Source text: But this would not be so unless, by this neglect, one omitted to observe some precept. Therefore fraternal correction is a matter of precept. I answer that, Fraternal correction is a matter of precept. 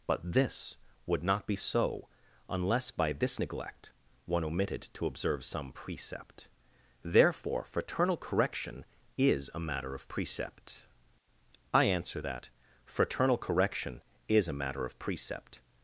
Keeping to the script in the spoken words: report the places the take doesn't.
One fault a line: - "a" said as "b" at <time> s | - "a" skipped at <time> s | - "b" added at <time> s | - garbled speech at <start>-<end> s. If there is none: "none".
none